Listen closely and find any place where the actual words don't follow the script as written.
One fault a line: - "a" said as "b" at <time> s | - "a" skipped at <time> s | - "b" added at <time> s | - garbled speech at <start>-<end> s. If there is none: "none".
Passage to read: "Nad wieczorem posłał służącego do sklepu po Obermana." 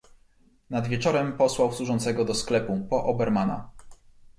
none